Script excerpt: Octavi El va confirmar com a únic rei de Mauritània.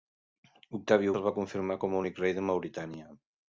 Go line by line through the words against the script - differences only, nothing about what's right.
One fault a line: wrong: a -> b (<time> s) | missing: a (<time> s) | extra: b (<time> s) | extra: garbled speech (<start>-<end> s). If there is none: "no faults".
no faults